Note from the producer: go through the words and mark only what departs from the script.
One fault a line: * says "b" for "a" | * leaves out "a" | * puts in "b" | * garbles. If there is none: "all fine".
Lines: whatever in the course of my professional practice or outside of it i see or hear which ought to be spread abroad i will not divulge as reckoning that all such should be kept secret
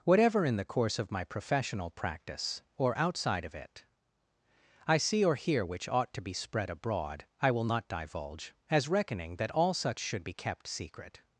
all fine